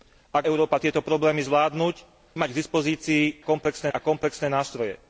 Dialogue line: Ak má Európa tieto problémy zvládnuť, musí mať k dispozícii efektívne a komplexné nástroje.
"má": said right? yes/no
no